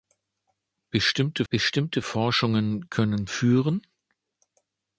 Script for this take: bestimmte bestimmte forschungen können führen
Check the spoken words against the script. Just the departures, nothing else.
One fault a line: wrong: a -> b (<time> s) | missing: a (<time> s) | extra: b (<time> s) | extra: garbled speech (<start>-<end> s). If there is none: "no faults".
no faults